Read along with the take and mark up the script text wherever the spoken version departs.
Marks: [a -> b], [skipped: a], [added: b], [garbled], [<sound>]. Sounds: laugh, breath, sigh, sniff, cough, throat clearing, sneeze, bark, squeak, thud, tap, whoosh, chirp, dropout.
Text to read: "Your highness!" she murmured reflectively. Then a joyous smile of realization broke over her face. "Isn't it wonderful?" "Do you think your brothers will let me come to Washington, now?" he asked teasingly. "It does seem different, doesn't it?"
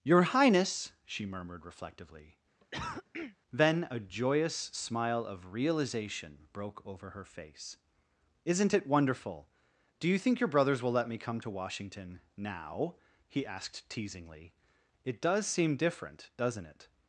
"Your highness!" she murmured reflectively. [cough] Then a joyous smile of realization broke over her face. "Isn't it wonderful?" "Do you think your brothers will let me come to Washington, now?" he asked teasingly. "It does seem different, doesn't it?"